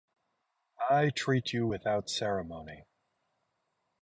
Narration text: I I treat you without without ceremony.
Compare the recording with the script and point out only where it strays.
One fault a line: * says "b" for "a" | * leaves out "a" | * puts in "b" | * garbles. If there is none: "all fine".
* leaves out "I"
* leaves out "without"